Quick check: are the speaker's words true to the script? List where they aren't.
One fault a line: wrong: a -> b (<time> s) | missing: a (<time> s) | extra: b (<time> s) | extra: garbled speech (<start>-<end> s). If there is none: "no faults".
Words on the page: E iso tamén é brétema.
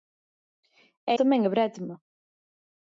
missing: iso (1.1 s)